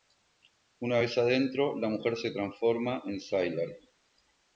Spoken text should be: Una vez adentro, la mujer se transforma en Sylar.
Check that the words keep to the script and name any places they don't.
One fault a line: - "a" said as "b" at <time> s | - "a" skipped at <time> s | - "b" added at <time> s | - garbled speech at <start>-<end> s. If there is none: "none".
none